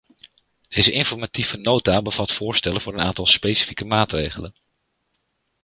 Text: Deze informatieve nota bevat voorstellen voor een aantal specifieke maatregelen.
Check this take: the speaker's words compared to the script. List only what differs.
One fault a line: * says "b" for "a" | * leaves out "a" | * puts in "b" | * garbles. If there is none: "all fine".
all fine